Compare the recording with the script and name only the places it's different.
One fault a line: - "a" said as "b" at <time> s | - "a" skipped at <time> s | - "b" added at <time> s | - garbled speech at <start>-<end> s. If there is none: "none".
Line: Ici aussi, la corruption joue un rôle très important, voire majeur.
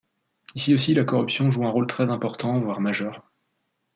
none